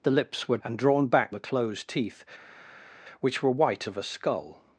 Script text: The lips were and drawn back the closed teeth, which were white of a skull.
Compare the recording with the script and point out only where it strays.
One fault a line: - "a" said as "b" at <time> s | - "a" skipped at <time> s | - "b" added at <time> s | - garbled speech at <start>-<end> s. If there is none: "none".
none